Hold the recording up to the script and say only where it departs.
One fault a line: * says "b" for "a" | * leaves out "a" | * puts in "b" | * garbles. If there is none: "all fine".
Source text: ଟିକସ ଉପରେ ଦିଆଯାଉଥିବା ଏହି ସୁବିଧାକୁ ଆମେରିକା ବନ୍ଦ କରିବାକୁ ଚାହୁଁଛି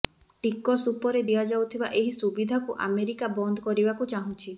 all fine